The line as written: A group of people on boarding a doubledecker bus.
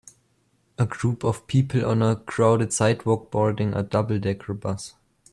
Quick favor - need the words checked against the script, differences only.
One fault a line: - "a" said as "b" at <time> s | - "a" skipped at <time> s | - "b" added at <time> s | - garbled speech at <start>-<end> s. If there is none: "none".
- "a crowded sidewalk" added at 2.0 s